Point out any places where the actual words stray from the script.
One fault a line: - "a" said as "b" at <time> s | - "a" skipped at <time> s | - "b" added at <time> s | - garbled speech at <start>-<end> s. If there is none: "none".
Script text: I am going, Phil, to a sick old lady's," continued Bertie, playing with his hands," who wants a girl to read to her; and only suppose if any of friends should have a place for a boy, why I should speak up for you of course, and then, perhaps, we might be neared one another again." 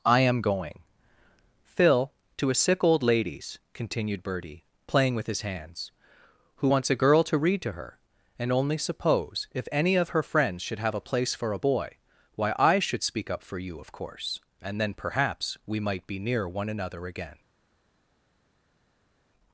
- "her" added at 10.1 s
- "neared" said as "near" at 16.2 s